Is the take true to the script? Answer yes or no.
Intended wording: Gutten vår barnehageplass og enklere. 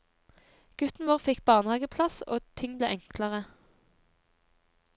no